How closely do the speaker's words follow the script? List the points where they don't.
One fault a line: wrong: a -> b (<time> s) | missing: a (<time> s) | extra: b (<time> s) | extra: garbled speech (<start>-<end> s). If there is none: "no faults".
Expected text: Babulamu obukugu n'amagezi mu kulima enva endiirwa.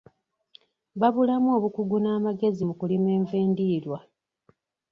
no faults